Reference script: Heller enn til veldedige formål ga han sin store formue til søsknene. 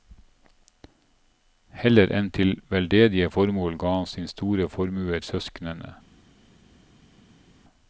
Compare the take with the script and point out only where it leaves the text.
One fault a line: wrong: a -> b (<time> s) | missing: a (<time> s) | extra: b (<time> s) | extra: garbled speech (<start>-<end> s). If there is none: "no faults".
missing: til (5.2 s)